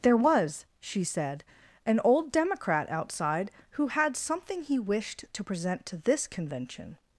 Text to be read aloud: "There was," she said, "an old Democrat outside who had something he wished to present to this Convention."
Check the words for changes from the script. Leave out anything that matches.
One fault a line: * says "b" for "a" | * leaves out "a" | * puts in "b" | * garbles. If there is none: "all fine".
all fine